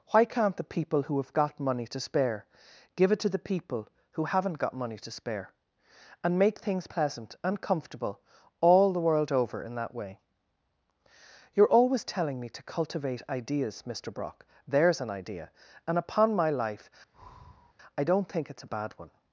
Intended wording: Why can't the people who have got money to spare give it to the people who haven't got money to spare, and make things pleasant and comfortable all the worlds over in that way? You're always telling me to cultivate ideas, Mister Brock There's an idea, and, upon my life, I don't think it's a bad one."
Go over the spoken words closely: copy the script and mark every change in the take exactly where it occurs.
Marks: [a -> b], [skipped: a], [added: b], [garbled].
Why can't the people who have got money to spare give it to the people who haven't got money to spare, and make things pleasant and comfortable all the [worlds -> world] over in that way? You're always telling me to cultivate ideas, Mister Brock There's an idea, and, upon my life, I don't think it's a bad one."